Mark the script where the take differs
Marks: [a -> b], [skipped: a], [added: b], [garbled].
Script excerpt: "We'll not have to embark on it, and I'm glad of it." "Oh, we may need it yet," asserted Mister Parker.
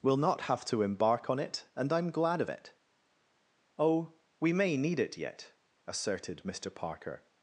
"We'll not have to embark on it, and I'm glad of it." "Oh, we may need it yet," asserted Mister Parker.